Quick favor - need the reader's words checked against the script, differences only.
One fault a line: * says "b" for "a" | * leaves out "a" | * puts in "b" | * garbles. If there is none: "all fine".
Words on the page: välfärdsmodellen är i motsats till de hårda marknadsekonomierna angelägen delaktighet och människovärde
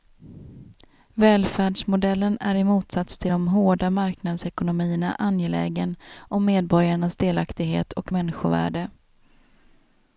* puts in "om medborgarnas"